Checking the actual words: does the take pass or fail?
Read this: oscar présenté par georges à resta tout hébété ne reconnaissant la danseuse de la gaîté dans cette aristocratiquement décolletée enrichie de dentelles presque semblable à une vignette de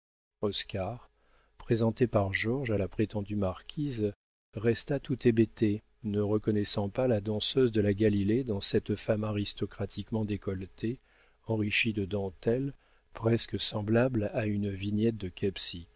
fail